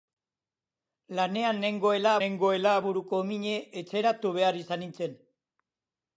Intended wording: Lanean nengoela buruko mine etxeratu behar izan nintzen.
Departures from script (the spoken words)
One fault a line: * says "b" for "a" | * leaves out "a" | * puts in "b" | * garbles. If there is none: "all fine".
* puts in "nengoela"